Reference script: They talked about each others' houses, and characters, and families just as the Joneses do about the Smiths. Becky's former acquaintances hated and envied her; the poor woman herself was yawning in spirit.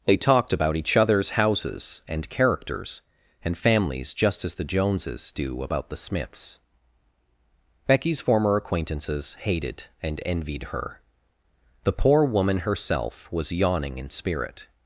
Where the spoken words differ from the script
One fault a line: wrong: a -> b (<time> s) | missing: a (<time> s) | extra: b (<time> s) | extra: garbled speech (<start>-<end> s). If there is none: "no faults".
no faults